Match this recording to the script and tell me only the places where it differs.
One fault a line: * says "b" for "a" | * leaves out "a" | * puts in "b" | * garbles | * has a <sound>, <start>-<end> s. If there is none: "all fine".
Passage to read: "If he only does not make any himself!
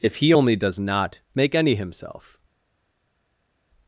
all fine